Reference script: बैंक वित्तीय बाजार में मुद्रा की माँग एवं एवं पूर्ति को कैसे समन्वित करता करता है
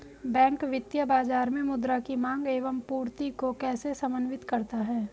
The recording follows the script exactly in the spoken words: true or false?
false